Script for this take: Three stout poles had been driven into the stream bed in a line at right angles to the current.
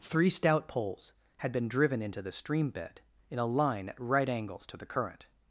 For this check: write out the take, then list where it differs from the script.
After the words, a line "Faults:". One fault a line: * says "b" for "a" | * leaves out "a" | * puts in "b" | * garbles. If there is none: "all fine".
Three stout poles had been driven into the stream bed in a line at right angles to the current.
Faults:
all fine